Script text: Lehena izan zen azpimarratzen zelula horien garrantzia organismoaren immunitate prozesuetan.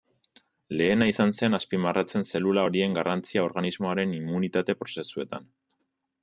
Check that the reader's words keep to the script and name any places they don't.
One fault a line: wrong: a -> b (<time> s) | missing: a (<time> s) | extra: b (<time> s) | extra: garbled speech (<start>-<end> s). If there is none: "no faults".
no faults